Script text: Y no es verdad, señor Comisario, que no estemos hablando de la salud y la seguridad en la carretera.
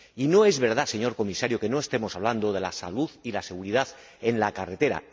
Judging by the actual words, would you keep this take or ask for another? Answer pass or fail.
pass